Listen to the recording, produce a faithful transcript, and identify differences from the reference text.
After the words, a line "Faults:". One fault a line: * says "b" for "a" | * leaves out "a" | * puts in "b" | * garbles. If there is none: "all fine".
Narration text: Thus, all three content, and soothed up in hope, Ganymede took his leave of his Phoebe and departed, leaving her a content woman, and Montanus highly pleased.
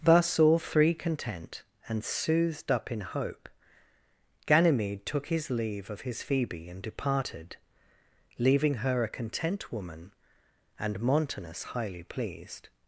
Thus, all three content, and soothed up in hope, Ganymede took his leave of his Phoebe and departed, leaving her a content woman, and Montanus highly pleased.
Faults:
all fine